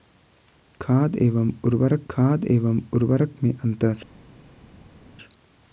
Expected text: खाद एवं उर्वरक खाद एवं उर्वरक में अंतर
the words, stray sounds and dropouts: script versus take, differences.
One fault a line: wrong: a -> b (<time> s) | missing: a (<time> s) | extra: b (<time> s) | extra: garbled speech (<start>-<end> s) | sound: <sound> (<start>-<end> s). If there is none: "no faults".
no faults